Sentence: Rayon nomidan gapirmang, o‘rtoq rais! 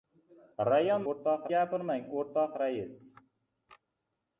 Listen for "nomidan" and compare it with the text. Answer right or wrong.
wrong